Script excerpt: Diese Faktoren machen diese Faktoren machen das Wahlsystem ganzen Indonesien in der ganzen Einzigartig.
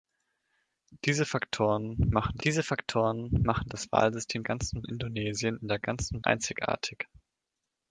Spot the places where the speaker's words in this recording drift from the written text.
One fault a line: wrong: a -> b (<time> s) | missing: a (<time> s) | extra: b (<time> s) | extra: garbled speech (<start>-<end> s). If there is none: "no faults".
no faults